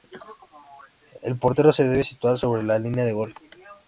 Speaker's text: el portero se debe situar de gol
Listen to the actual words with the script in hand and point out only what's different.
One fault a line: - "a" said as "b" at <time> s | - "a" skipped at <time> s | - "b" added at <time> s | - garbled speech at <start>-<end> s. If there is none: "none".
- "sobre la línea" added at 2.4 s